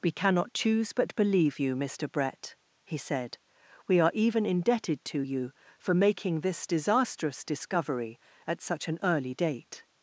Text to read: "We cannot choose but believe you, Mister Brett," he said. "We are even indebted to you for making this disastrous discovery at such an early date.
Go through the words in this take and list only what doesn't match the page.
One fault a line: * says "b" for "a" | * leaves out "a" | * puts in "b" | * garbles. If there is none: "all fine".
all fine